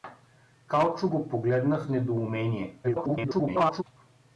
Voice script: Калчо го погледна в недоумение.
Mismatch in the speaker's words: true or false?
true